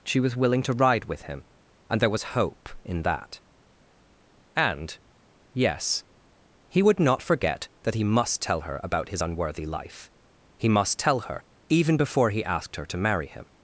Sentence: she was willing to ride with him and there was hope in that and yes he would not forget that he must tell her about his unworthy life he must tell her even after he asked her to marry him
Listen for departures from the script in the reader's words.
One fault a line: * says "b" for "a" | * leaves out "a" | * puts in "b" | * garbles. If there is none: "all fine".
* says "before" for "after"